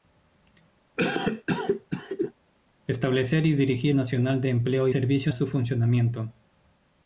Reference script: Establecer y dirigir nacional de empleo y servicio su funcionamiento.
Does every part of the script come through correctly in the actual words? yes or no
yes